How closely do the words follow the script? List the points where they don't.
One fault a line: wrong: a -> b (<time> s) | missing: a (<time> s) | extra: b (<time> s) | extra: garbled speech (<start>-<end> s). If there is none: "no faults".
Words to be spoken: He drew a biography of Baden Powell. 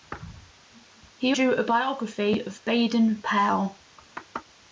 no faults